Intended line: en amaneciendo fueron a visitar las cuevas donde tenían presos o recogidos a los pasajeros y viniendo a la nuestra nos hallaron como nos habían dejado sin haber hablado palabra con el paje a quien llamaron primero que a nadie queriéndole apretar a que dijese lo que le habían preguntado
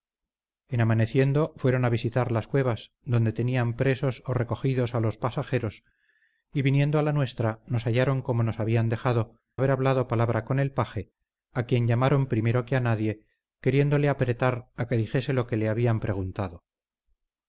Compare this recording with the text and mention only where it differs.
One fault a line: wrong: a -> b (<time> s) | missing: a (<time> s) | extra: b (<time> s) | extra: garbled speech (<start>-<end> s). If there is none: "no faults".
missing: sin (9.4 s)